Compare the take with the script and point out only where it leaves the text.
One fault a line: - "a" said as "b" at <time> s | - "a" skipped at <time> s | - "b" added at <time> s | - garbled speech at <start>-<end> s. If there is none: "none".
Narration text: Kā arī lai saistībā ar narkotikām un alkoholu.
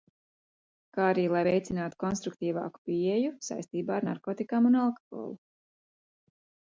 - "veicinātu konstruktīvāku pieeju" added at 1.4 s